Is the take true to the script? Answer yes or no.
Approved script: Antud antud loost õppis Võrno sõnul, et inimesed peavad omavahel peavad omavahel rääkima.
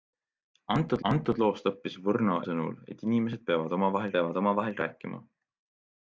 yes